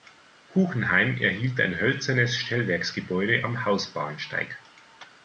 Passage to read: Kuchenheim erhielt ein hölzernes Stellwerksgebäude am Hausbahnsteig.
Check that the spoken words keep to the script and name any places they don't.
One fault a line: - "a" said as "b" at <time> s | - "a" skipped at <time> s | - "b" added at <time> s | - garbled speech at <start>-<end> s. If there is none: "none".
none